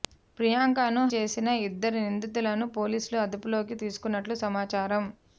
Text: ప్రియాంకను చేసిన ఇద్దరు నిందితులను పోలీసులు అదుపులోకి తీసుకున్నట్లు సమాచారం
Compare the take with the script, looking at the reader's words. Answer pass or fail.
pass